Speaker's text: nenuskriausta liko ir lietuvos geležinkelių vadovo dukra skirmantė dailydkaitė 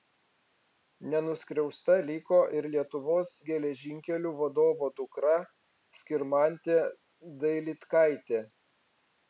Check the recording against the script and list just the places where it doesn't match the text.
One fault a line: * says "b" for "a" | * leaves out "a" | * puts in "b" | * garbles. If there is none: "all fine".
all fine